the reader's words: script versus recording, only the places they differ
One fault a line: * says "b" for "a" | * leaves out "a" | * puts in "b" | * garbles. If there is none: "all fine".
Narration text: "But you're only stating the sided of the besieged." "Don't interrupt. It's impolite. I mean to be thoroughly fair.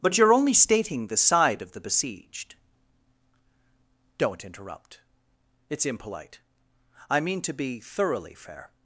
* says "side" for "sided"